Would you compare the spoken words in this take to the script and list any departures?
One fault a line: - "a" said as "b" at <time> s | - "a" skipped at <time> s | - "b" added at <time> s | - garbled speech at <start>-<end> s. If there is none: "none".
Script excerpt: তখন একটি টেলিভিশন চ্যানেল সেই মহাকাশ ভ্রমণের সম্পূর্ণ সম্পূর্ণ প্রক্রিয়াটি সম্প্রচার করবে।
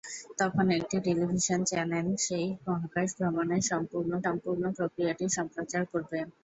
none